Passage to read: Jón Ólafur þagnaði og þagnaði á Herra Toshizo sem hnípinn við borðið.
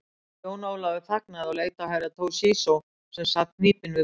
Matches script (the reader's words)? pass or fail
fail